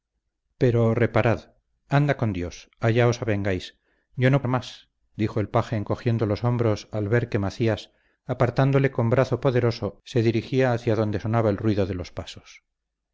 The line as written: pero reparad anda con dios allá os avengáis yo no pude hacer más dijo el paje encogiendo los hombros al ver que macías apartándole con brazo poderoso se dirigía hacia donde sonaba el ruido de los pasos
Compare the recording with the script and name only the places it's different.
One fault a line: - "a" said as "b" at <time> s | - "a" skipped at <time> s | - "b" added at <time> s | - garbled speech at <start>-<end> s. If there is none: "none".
- "pude hacer" skipped at 4.4 s